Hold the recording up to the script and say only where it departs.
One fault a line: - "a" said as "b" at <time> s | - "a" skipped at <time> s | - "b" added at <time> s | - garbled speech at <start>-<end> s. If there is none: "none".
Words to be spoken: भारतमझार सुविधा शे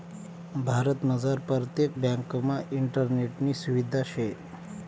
- "परतेक ब्यांकमा इंटरनेटनी" added at 1.5 s